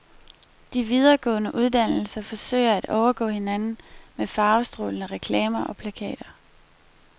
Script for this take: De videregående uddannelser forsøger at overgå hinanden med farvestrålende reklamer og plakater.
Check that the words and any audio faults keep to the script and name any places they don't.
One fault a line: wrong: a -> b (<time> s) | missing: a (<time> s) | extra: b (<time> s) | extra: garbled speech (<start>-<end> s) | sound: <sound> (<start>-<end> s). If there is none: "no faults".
no faults